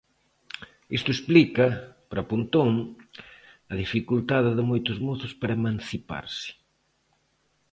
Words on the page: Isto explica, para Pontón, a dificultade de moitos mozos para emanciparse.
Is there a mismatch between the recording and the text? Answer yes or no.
no